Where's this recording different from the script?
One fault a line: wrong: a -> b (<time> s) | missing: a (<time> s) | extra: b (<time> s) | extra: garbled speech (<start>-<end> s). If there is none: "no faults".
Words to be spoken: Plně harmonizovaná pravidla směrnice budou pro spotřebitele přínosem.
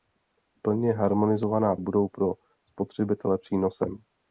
missing: pravidla směrnice (1.8 s)